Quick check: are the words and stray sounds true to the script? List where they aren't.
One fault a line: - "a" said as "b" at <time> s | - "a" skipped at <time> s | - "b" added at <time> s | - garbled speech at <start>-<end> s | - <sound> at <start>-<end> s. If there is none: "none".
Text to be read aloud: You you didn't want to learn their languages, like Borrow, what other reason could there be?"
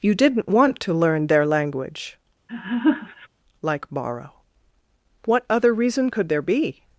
- "you" skipped at 0.1 s
- "languages" said as "language" at 1.4 s
- laugh at 2.5-3.3 s